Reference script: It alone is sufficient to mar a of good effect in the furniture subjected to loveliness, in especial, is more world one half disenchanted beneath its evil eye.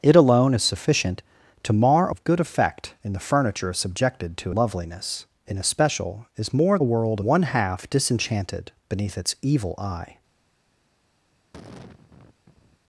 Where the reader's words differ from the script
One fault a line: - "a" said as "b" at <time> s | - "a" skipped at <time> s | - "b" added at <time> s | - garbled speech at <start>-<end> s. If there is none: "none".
none